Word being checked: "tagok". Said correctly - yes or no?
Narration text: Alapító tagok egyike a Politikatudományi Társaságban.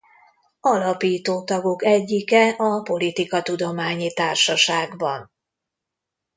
yes